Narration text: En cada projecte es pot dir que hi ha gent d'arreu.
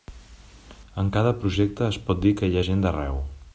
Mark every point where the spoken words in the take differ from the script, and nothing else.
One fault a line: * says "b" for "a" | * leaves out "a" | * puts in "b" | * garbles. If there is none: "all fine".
all fine